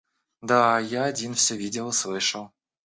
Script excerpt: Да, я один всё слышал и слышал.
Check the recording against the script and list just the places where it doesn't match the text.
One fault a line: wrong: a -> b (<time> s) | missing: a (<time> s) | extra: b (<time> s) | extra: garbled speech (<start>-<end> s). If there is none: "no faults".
wrong: слышал -> видел (1.5 s)